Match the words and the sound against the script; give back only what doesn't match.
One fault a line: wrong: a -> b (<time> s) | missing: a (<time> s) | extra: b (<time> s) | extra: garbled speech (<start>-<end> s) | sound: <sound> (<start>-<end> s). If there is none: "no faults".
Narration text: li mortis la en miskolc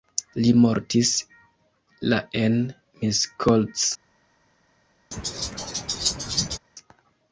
sound: laugh (5.1-6.6 s)